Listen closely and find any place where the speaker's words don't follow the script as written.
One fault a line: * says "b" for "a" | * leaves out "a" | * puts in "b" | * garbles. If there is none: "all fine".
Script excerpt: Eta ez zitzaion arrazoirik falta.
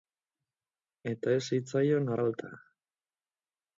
* leaves out "arrazoirik"